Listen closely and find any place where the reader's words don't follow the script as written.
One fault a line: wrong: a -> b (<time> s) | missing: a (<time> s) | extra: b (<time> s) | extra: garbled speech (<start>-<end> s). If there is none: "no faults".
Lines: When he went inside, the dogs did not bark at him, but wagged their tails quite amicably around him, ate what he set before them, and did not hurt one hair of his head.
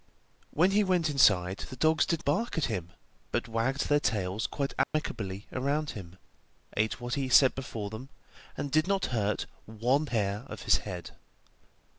missing: not (2.2 s)